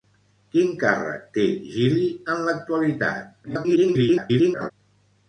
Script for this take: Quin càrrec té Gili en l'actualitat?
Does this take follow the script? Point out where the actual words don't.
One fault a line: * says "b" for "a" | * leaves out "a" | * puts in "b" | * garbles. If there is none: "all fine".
* garbles